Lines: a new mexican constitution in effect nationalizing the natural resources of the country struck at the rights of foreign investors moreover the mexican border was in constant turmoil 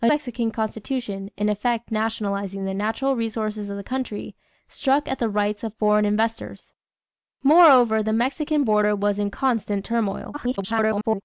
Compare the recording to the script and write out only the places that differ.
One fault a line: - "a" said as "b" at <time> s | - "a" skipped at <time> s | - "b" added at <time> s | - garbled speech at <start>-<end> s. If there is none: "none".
- "new" skipped at 0.1 s
- garbled speech at 10.3-11.2 s